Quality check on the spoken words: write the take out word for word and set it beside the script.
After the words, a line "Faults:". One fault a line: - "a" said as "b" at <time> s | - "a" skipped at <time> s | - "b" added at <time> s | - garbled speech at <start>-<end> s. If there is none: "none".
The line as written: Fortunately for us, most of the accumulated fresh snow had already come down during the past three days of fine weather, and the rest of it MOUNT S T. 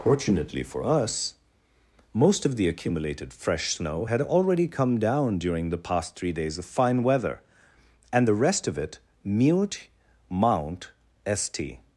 Fortunately for us, most of the accumulated fresh snow had already come down during the past three days of fine weather, and the rest of it mute MOUNT S T.
Faults:
- "mute" added at 9.2 s